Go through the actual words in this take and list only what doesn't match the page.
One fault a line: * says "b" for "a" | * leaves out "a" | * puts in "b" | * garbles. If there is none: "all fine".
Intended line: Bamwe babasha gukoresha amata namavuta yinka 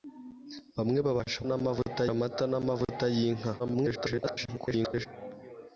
* says "namavuta" for "gukoresha"
* garbles